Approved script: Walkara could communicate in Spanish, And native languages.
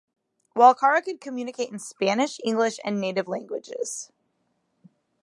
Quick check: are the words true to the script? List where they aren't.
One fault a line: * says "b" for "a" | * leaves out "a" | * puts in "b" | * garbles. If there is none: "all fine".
* puts in "English"